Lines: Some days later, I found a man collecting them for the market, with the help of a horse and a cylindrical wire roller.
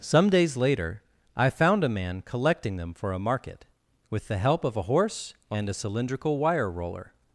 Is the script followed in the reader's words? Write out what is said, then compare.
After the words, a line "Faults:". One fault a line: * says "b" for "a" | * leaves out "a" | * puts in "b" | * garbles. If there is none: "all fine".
Some days later, I found a man collecting them for a market, with the help of a horse and a cylindrical wire roller.
Faults:
* says "a" for "the"